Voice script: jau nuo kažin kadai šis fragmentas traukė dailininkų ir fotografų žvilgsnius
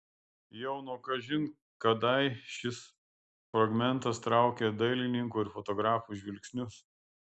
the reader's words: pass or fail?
pass